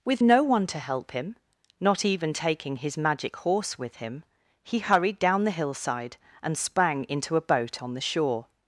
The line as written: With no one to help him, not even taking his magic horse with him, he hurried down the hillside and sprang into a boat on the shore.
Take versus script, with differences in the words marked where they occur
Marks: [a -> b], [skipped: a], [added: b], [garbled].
With no one to help him, not even taking his magic horse with him, he hurried down the hillside and sprang into a boat on the shore.